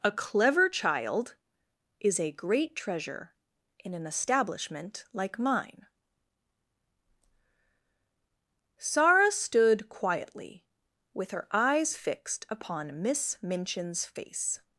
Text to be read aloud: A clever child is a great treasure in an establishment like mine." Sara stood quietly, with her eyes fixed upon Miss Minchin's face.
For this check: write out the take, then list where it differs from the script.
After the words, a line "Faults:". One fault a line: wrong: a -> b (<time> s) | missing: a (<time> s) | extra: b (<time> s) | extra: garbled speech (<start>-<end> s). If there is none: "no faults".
A clever child is a great treasure in an establishment like mine." Sara stood quietly, with her eyes fixed upon Miss Minchin's face.
Faults:
no faults